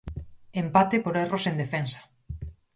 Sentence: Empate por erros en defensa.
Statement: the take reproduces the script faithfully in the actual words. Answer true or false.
true